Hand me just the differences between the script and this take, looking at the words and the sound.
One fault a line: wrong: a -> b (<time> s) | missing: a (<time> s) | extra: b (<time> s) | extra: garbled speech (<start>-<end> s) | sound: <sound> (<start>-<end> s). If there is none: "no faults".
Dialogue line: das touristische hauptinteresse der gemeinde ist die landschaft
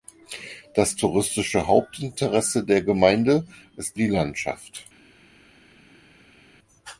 no faults